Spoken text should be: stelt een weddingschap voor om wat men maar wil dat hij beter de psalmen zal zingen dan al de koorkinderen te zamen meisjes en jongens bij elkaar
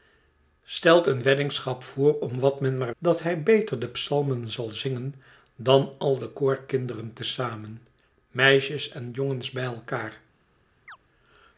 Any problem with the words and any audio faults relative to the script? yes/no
yes